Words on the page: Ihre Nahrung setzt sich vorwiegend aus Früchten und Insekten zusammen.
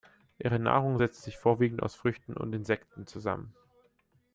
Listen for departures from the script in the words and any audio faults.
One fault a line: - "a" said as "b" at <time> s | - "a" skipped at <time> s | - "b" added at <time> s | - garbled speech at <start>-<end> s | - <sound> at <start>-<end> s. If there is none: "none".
none